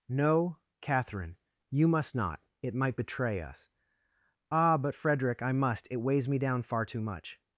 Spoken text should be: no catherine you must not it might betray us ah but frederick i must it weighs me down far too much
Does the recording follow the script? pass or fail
pass